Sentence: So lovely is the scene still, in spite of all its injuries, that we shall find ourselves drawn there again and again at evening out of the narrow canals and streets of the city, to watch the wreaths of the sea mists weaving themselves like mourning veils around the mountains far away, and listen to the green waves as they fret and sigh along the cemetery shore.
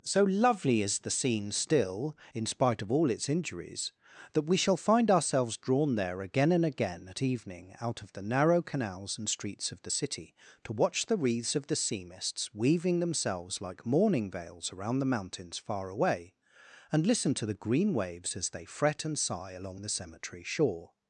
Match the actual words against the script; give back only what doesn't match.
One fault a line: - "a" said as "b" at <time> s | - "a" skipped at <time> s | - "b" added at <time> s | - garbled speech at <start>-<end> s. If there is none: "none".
none